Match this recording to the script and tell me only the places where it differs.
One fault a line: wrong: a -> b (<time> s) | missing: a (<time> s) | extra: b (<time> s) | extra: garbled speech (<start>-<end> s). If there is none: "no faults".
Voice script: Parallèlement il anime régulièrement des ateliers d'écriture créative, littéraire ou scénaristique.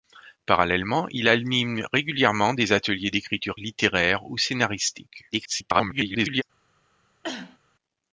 missing: créative (3.6 s)
extra: garbled speech (5.3-6.4 s)